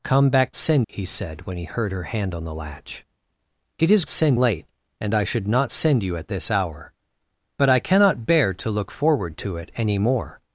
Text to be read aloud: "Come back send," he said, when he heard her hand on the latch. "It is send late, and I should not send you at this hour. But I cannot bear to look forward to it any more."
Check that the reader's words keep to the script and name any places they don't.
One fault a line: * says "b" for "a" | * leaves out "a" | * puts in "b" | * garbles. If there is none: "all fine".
all fine